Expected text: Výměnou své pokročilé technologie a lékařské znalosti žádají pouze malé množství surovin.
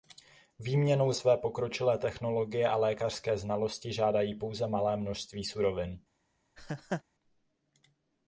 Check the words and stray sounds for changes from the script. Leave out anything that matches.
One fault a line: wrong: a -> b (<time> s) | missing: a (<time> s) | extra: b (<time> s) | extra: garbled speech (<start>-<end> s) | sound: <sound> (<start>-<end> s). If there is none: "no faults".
sound: laugh (6.6-7.0 s)